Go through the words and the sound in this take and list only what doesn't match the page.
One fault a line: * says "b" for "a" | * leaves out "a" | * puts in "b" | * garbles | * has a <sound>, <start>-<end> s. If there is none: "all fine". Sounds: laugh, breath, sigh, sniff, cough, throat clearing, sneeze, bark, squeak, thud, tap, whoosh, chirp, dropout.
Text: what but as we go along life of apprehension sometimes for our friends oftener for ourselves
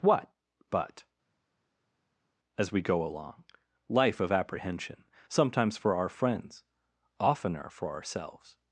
all fine